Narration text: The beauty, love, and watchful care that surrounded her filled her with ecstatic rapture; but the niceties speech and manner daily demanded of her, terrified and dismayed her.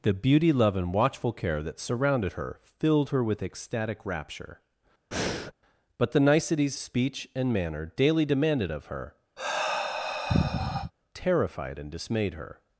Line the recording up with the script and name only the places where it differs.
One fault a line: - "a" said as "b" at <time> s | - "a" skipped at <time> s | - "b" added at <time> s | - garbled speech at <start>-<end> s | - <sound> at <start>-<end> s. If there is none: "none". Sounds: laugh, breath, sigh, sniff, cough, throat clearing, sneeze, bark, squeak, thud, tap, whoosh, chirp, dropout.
- breath at 5.1-5.5 s
- sigh at 9.4-10.9 s